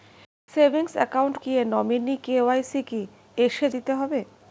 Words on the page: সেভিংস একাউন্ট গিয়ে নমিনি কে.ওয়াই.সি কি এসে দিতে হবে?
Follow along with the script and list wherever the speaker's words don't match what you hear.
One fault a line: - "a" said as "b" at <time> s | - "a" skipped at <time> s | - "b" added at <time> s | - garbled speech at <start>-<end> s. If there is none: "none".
none